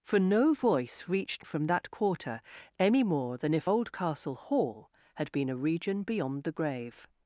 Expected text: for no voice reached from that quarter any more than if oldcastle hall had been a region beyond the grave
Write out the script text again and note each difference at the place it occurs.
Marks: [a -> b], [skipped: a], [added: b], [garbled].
for no voice reached from that quarter any more than if oldcastle hall had been a region beyond the grave